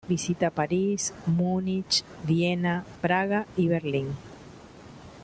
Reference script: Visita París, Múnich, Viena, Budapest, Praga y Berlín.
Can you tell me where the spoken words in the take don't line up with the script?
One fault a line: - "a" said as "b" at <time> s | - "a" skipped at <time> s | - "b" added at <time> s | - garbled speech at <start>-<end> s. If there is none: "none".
- "Budapest" skipped at 2.9 s